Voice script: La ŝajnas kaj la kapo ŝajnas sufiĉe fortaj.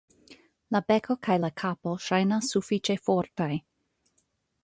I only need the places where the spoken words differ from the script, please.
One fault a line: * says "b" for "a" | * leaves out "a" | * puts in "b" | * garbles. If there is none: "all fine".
* says "beko" for "ŝajnas"